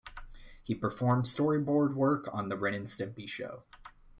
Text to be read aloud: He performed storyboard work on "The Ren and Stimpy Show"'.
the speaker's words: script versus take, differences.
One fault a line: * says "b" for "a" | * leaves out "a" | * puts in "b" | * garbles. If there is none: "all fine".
all fine